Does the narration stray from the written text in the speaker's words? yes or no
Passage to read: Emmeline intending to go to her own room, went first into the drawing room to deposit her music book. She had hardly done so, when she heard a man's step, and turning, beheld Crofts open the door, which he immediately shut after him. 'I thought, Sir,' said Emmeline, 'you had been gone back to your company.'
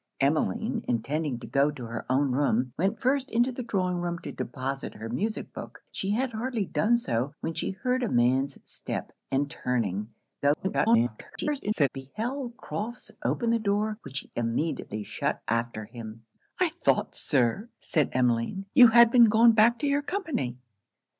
yes